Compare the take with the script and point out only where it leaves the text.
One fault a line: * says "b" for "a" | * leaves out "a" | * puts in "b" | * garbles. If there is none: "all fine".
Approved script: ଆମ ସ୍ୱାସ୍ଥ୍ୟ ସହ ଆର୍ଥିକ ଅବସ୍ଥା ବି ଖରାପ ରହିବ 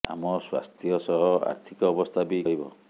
* leaves out "ଖରାପ"